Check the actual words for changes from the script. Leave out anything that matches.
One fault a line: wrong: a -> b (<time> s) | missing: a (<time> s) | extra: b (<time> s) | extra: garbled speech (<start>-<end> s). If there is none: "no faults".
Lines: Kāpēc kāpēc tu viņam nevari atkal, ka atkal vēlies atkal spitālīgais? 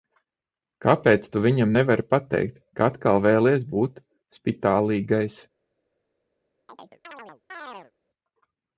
missing: kāpēc (1.3 s)
wrong: atkal -> pateikt (2.1 s)
wrong: atkal -> būt (3.7 s)